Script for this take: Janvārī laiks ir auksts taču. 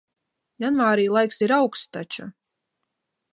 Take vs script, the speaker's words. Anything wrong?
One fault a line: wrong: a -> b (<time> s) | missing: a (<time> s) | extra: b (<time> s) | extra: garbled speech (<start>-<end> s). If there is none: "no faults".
no faults